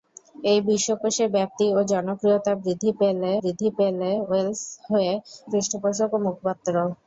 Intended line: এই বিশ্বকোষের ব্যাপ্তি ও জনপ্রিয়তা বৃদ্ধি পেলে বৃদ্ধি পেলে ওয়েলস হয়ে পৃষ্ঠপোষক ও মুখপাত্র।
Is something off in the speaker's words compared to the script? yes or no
no